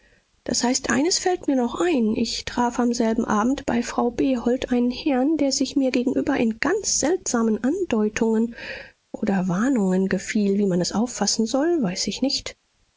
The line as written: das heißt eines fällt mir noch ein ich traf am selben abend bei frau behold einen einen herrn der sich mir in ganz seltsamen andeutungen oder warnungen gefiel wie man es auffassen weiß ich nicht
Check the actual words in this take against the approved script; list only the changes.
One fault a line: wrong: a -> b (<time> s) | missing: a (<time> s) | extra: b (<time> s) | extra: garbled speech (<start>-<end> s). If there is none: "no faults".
missing: einen (4.9 s)
extra: gegenüber (5.9 s)
extra: soll (11.5 s)